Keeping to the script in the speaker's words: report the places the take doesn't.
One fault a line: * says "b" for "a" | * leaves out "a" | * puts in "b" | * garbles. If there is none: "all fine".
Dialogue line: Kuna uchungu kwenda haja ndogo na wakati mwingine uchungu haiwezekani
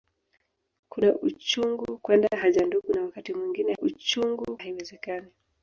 all fine